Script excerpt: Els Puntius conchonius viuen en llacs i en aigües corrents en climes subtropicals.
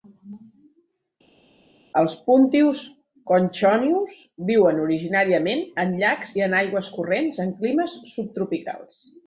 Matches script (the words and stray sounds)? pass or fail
fail